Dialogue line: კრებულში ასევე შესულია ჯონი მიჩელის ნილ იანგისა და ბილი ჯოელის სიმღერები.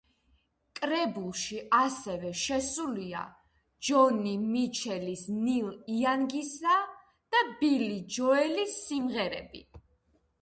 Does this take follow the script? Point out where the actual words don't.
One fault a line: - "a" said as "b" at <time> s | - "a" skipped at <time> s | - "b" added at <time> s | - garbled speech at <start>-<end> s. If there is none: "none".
none